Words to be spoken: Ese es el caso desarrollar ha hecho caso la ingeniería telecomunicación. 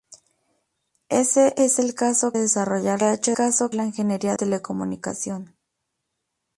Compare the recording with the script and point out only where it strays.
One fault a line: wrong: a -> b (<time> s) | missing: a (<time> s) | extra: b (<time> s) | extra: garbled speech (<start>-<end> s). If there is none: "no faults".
no faults